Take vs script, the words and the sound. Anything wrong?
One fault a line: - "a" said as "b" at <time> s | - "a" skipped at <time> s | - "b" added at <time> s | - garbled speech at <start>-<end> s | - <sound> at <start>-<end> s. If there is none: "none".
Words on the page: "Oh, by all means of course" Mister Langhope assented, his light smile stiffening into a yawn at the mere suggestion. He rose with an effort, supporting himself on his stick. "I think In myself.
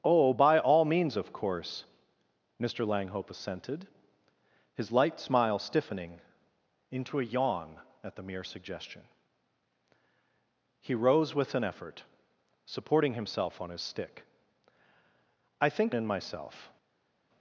none